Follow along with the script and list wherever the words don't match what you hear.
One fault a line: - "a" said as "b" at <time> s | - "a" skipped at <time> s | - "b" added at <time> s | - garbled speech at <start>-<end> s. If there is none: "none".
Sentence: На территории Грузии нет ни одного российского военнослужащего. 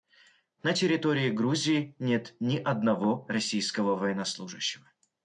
none